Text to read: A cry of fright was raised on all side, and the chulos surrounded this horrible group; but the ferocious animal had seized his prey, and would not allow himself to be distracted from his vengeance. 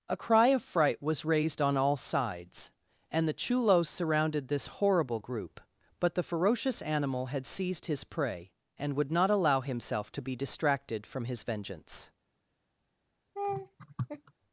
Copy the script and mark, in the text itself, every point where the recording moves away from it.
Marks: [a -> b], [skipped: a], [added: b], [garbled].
A cry of fright was raised on all [side, -> sides] and the chulos surrounded this horrible group; but the ferocious animal had seized his prey, and would not allow himself to be distracted from his vengeance.